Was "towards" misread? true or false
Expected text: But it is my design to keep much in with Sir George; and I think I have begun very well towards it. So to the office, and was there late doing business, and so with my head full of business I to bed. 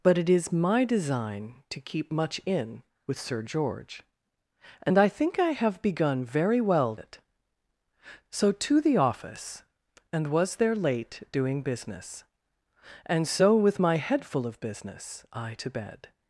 true